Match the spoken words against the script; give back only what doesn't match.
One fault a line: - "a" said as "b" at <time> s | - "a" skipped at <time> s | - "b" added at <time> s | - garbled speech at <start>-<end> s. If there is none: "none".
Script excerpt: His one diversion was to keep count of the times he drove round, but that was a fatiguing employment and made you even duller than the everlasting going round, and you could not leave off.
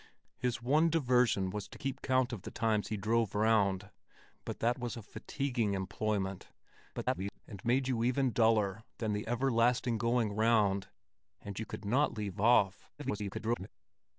- garbled speech at 6.9-7.4 s
- garbled speech at 13.0-13.7 s